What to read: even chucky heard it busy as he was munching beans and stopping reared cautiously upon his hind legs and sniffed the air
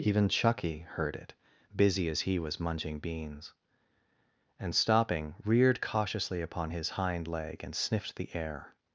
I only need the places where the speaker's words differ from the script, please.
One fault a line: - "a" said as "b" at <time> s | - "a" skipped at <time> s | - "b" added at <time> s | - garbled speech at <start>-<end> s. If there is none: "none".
- "legs" said as "leg" at 7.3 s